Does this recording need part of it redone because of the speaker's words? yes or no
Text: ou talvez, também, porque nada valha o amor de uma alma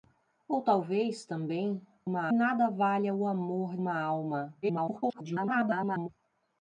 yes